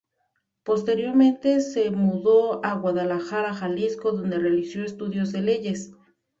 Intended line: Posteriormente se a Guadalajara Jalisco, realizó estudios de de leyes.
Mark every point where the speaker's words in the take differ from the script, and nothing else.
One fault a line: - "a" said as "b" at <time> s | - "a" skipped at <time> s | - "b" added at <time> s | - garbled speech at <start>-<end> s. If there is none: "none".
- "mudó" added at 1.9 s
- "donde" added at 4.1 s
- "de" skipped at 5.4 s